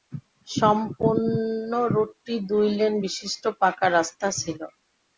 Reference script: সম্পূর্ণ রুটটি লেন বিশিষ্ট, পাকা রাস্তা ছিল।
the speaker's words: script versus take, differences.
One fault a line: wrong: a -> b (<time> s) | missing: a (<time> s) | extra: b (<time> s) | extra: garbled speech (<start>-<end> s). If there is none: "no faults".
extra: দুই (2.5 s)